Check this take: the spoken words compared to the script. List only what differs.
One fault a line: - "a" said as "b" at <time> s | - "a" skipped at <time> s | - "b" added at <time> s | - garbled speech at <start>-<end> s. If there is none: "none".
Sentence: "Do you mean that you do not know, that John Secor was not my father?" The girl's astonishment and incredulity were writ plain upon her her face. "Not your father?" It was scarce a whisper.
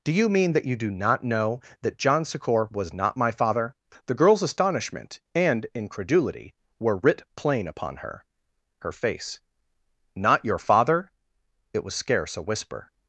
none